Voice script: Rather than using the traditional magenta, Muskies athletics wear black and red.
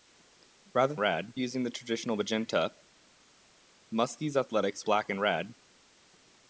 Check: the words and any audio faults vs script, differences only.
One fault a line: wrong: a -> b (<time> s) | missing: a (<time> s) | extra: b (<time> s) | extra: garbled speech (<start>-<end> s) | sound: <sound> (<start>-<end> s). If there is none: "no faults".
wrong: than -> red (1.0 s)
missing: wear (4.8 s)